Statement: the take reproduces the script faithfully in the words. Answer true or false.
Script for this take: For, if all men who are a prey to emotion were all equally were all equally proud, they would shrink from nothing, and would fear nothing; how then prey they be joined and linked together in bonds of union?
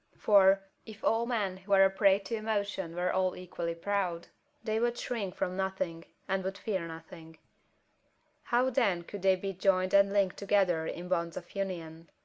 false